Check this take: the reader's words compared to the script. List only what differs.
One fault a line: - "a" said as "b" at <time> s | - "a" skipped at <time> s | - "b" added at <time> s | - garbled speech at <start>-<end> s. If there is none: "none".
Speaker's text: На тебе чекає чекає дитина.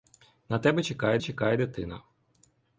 none